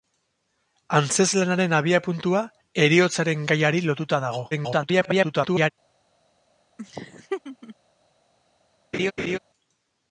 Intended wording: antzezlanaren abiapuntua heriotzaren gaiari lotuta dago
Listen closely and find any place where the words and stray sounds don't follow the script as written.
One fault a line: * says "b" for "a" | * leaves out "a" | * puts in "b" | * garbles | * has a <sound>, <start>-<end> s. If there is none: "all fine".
* garbles
* has a laugh, 6.8-7.8 s
* has a laugh, 8.9-9.4 s